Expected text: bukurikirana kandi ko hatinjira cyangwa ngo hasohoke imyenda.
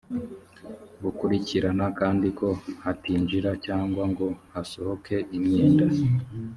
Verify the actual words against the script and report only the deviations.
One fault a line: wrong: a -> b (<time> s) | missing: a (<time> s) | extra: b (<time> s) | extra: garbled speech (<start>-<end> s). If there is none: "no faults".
no faults